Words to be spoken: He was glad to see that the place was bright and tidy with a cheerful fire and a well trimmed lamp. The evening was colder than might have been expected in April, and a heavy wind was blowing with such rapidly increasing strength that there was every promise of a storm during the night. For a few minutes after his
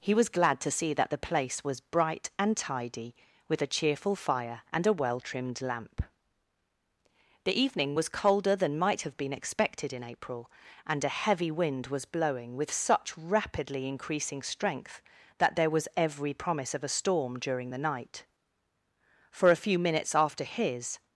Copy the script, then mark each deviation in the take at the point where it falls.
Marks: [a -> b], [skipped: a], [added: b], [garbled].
He was glad to see that the place was bright and tidy with a cheerful fire and a well trimmed lamp. The evening was colder than might have been expected in April, and a heavy wind was blowing with such rapidly increasing strength that there was every promise of a storm during the night. For a few minutes after his